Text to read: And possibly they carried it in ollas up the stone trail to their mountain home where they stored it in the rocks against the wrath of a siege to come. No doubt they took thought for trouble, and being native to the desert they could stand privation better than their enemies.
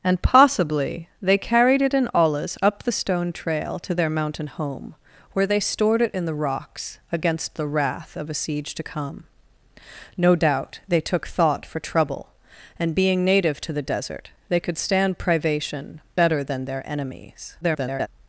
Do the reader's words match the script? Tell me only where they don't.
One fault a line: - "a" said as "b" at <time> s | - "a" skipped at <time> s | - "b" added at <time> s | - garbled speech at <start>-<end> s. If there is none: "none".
- garbled speech at 17.6-18.1 s